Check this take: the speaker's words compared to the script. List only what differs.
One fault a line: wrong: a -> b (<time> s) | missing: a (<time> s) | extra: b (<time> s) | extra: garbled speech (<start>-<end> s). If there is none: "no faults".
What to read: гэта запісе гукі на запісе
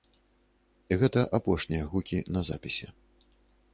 wrong: запісе -> апошнія (1.4 s)